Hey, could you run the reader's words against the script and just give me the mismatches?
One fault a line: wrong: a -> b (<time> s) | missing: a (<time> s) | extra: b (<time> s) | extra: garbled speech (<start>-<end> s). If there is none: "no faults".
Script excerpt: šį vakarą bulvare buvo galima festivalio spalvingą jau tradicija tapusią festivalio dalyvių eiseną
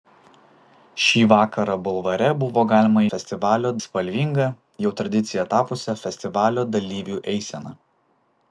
no faults